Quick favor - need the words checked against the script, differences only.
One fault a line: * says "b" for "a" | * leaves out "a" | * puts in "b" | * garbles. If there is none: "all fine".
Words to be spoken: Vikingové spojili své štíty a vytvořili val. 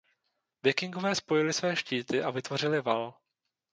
all fine